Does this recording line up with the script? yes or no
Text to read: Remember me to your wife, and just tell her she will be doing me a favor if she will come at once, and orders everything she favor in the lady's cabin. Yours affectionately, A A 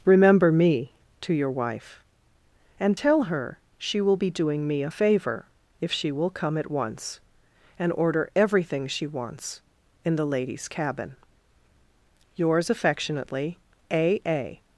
no